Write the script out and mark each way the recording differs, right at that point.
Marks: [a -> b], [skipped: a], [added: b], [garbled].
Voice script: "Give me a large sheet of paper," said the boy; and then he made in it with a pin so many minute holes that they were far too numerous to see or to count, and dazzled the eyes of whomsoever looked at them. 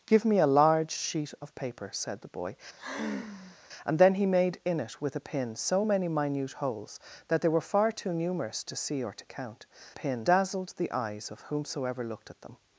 "Give me a large sheet of paper," said the boy; and then he made in it with a pin so many minute holes that they were far too numerous to see or to count, [and -> pin] dazzled the eyes of whomsoever looked at them.